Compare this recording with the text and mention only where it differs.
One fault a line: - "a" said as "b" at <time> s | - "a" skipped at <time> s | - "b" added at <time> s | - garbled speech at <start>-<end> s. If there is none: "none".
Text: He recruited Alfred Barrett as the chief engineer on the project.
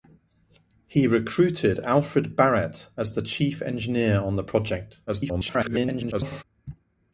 - garbled speech at 5.1-6.4 s